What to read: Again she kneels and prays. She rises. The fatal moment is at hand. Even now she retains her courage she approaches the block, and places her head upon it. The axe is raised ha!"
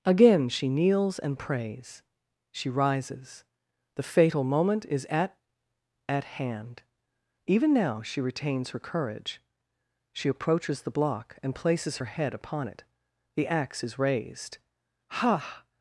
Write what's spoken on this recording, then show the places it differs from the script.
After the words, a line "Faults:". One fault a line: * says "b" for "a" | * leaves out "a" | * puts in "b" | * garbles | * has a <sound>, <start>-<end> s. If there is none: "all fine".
Again she kneels and prays. She rises. The fatal moment is at at hand. Even now she retains her courage she approaches the block, and places her head upon it. The axe is raised ha!"
Faults:
* puts in "at"